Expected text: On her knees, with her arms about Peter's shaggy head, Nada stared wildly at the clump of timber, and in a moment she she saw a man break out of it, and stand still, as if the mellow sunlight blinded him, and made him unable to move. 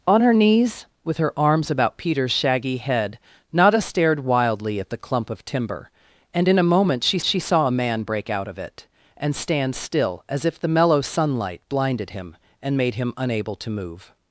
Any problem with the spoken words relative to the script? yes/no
no